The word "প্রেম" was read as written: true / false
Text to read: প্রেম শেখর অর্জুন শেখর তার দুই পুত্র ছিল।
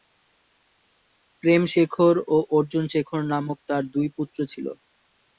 true